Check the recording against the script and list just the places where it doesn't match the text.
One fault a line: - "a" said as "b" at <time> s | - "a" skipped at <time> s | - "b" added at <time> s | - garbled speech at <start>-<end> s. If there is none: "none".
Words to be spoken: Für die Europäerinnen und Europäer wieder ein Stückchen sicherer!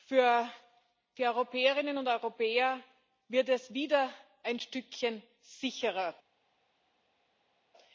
- "wird es" added at 3.3 s